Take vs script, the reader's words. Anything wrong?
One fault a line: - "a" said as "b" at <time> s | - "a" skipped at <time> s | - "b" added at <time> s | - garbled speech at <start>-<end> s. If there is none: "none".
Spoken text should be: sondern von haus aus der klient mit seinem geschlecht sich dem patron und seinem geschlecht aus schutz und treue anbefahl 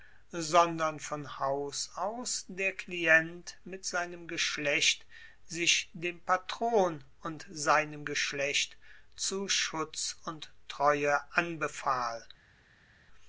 - "aus" said as "zu" at 9.2 s